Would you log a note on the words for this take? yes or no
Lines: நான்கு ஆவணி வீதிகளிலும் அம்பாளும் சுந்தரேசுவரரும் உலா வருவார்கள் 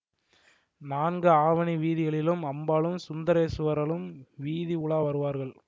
yes